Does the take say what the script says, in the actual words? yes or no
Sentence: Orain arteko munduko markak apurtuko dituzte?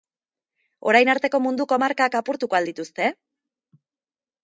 no